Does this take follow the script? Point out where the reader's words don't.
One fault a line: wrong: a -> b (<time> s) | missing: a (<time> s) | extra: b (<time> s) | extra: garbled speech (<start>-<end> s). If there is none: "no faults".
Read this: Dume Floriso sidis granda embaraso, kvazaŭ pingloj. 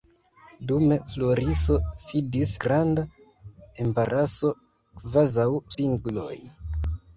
no faults